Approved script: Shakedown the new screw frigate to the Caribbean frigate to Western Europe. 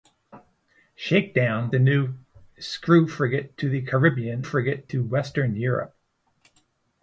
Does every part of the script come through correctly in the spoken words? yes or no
yes